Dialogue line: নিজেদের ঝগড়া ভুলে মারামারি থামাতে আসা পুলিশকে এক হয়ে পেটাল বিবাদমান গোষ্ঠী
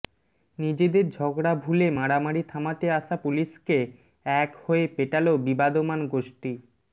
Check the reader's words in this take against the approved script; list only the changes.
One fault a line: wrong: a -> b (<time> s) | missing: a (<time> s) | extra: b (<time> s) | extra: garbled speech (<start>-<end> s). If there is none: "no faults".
no faults